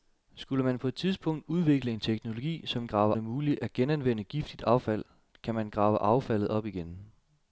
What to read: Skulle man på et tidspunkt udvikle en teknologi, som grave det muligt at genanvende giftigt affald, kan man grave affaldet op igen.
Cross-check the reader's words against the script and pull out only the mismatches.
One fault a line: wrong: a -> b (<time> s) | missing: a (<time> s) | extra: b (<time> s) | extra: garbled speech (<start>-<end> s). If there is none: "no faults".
no faults